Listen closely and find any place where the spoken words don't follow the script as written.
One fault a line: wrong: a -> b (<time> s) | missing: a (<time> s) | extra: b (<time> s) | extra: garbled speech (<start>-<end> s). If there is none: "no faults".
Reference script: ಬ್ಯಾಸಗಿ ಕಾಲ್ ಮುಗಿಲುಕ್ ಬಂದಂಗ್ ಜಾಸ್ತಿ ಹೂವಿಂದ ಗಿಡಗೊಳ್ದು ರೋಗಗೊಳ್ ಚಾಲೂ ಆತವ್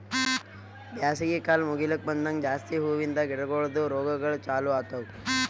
no faults